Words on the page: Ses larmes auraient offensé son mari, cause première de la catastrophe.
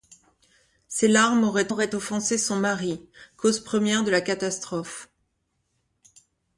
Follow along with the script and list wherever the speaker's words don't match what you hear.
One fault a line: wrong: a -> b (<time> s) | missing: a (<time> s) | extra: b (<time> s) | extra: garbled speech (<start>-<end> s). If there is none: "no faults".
extra: auraient (1.7 s)